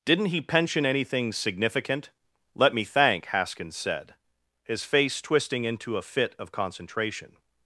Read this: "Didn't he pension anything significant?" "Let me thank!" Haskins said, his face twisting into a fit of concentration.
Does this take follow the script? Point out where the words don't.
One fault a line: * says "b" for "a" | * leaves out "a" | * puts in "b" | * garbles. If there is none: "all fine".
all fine